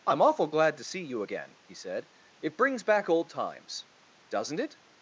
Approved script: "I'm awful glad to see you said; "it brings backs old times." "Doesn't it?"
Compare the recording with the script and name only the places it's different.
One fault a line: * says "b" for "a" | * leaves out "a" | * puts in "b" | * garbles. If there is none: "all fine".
* puts in "again he"
* says "back" for "backs"